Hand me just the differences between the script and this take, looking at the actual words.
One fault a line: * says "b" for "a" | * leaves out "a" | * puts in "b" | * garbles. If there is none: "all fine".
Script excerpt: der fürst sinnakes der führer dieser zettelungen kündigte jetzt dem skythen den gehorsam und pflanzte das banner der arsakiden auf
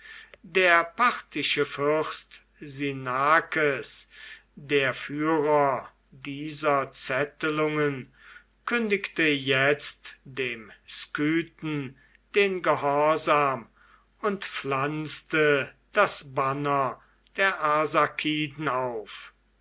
* puts in "parthische"